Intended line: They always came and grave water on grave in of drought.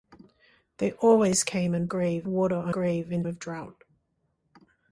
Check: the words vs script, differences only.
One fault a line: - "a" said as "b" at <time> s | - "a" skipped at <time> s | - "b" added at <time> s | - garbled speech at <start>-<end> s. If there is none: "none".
none